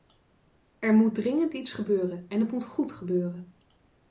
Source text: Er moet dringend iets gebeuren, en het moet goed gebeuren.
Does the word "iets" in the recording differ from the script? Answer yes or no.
no